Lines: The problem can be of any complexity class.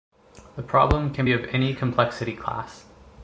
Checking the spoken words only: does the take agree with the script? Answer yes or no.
yes